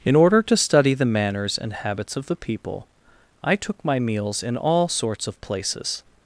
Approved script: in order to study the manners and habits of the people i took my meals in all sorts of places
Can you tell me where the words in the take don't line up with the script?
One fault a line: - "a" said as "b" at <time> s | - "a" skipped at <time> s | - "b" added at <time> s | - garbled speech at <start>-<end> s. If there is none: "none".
none